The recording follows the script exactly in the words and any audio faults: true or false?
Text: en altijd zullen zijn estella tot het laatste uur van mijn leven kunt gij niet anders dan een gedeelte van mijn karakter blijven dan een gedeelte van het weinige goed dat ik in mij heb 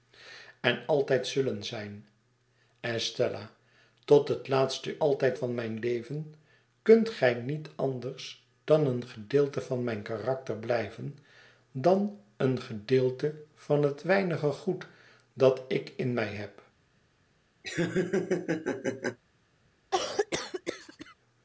false